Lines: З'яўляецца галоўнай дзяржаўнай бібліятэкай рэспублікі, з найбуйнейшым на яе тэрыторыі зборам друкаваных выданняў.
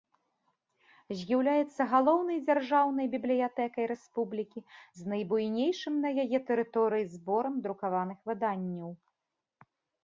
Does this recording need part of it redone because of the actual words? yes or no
no